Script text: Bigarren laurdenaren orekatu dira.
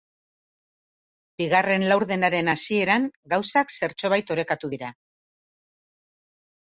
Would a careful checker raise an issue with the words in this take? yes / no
yes